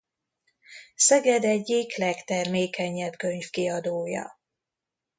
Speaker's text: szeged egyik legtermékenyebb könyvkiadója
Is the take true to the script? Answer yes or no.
yes